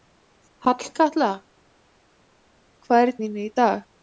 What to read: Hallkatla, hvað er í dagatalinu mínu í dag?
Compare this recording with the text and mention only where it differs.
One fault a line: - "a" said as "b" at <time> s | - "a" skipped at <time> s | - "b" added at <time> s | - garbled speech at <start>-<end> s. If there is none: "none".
- "dagatalinu" skipped at 3.2 s